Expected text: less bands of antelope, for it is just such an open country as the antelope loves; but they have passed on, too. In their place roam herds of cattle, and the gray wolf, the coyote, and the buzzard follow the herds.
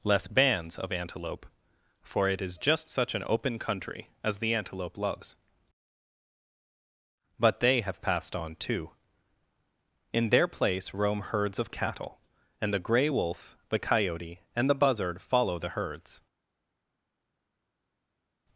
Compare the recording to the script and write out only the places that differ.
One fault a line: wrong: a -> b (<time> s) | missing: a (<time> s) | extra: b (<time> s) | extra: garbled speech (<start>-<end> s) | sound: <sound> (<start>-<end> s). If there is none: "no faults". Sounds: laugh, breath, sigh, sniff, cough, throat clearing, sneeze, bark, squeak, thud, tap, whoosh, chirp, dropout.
no faults